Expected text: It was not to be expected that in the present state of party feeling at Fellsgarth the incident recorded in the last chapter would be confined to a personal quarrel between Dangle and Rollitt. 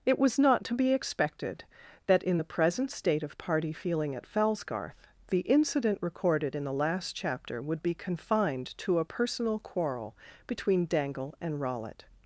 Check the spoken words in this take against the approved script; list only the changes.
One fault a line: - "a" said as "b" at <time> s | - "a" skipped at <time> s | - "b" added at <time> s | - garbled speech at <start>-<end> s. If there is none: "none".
none